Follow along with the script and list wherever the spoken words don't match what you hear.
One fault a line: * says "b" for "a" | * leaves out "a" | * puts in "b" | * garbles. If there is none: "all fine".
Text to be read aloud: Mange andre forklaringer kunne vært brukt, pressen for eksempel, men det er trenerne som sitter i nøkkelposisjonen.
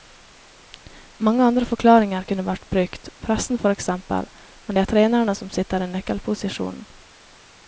all fine